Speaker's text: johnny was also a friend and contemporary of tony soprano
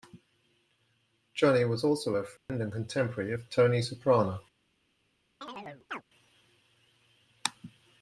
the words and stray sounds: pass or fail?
fail